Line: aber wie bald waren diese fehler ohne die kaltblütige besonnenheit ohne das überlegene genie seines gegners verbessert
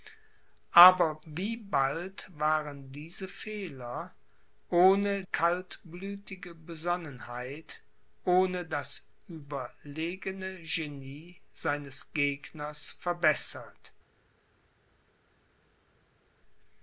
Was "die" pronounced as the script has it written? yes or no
no